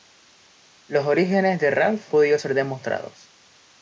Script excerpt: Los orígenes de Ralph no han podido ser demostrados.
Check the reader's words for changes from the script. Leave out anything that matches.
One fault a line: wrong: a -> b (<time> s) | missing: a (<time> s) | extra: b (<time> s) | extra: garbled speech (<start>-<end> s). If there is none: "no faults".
missing: no han (2.1 s)